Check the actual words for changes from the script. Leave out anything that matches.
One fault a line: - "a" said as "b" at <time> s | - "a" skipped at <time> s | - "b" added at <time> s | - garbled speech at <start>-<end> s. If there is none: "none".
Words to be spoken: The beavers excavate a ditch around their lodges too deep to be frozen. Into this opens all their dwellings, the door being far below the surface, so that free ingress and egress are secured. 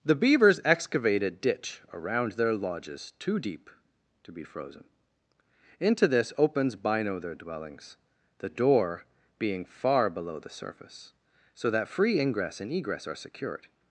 - "all" said as "bino" at 6.8 s